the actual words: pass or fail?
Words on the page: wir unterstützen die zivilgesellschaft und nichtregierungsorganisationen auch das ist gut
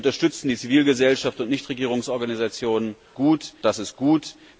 fail